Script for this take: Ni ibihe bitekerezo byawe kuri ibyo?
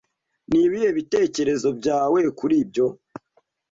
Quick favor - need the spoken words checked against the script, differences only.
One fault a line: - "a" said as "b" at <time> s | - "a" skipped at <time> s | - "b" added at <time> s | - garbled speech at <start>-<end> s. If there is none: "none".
none